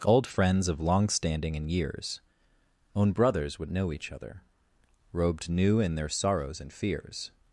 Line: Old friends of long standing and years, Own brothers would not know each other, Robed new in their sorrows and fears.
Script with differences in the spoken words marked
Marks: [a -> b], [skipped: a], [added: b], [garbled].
Old friends of long standing and years, Own brothers would [skipped: not] know each other, Robed new in their sorrows and fears.